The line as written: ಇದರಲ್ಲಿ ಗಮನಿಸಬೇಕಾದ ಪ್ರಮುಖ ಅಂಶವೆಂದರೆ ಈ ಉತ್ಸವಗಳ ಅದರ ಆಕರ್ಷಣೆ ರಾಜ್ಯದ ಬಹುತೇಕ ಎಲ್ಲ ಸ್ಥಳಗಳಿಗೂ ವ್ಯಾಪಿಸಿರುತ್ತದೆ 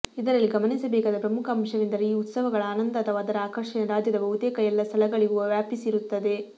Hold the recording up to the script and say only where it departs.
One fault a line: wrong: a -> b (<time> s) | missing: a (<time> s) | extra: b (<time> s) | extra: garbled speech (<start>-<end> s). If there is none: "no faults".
extra: ಆನಂದ ಅಥವಾ (2.7 s)